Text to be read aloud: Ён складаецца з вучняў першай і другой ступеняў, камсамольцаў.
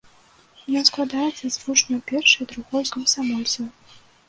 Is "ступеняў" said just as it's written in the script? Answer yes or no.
no